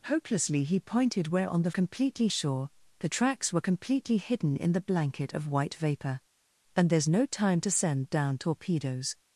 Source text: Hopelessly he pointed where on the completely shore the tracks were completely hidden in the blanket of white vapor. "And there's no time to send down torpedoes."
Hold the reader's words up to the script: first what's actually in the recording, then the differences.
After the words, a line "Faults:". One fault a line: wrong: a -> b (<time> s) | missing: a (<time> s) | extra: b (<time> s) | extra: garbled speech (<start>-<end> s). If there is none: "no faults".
Hopelessly he pointed where on the completely shore the tracks were completely hidden in the blanket of white vapor. "And there's no time to send down torpedoes."
Faults:
no faults